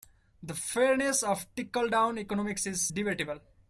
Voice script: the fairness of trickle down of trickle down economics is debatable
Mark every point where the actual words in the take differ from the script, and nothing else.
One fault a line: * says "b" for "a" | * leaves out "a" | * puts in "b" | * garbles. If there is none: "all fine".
* leaves out "of trickle down"